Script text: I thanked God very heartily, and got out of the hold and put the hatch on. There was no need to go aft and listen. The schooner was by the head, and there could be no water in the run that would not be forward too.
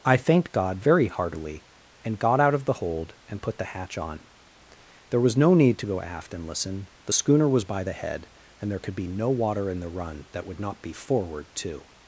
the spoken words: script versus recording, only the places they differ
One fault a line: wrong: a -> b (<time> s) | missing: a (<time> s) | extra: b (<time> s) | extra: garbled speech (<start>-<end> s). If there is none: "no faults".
no faults